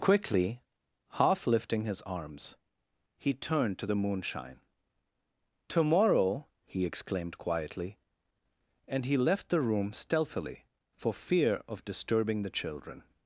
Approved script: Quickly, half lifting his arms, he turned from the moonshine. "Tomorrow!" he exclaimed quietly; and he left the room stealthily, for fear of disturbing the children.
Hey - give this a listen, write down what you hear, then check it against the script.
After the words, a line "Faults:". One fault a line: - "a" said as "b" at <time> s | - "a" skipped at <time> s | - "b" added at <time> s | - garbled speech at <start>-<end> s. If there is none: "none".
Quickly, half lifting his arms, he turned to the moonshine. "Tomorrow!" he exclaimed quietly; and he left the room stealthily, for fear of disturbing the children.
Faults:
- "from" said as "to" at 3.8 s